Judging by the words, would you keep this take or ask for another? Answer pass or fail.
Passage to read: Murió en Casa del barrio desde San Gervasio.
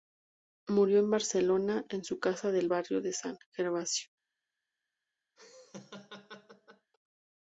fail